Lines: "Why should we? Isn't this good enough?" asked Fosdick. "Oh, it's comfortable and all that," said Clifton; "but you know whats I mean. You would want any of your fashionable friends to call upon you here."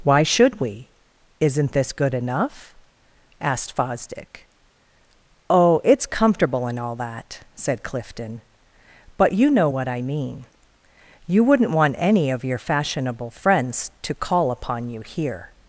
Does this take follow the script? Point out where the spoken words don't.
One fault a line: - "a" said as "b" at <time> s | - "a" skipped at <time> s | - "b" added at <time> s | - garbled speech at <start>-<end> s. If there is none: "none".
- "whats" said as "what" at 9.7 s
- "would" said as "wouldn't" at 11.4 s